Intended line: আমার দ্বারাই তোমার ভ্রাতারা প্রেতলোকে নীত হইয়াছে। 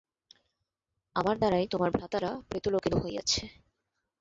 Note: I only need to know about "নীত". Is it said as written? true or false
false